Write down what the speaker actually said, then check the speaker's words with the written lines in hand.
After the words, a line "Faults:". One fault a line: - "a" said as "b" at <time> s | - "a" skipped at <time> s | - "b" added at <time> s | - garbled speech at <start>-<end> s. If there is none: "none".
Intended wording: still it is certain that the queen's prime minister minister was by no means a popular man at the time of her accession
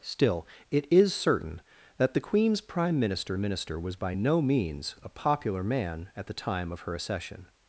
still it is certain that the queen's prime minister minister was by no means a popular man at the time of her accession
Faults:
none